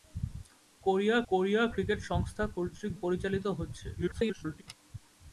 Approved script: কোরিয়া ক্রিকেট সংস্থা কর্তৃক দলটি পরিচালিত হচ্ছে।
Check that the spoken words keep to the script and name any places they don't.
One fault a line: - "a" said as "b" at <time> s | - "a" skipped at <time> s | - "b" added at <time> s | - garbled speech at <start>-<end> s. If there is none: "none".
- "কোরিয়া" added at 1.3 s
- "দলটি" skipped at 2.9 s
- garbled speech at 3.9-4.6 s